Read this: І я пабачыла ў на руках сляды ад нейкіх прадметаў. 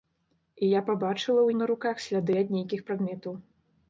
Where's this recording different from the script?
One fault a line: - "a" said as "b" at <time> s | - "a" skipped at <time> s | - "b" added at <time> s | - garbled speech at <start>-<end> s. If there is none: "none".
none